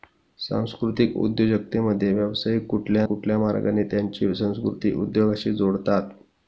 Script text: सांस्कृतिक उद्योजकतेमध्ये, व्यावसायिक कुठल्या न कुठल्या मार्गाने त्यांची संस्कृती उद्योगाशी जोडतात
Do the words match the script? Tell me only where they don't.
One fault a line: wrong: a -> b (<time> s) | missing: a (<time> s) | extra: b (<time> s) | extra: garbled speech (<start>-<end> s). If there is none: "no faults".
missing: न (3.0 s)